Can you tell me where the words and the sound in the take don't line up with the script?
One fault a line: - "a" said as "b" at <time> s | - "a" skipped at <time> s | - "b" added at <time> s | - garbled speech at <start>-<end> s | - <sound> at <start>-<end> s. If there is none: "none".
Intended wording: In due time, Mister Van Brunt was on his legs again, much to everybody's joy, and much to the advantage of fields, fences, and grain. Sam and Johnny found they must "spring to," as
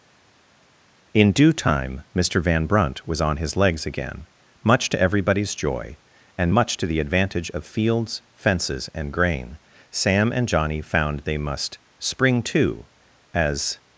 none